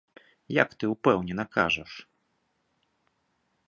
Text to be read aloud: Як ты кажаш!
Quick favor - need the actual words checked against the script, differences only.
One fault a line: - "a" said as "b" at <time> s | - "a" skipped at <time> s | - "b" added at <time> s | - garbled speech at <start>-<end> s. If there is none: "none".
- "ўпэўнена" added at 0.9 s